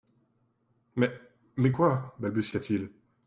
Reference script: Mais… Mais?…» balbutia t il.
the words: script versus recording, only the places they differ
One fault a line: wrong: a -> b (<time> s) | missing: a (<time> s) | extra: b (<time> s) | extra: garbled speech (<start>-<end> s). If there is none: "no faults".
extra: quoi (1.7 s)